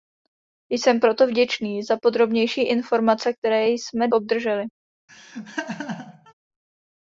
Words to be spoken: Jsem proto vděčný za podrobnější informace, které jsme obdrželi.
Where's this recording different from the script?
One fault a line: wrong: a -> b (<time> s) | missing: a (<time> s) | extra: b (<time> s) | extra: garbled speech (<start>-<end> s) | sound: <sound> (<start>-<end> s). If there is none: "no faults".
sound: laugh (5.1-6.3 s)